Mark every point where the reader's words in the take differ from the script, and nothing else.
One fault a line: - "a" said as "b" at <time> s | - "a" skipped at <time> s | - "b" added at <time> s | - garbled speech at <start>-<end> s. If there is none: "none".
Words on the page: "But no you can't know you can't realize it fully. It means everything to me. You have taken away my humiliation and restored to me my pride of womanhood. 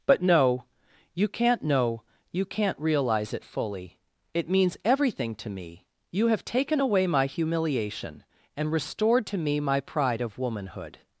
none